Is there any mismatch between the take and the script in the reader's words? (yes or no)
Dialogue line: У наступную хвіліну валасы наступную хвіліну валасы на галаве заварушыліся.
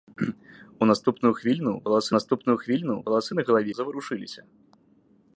no